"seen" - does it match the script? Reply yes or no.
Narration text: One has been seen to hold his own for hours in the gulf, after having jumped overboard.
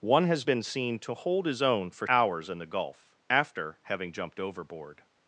yes